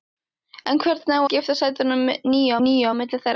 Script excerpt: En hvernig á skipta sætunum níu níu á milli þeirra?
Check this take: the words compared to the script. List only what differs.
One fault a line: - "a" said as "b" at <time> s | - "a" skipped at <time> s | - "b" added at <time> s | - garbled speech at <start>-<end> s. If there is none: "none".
none